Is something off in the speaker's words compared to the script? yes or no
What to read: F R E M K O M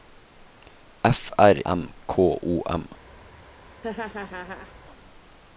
yes